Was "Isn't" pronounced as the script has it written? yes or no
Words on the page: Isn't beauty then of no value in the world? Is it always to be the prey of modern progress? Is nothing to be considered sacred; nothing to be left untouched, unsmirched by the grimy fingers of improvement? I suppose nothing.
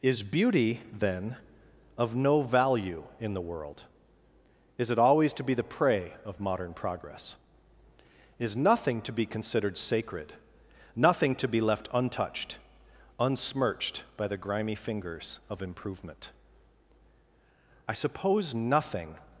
no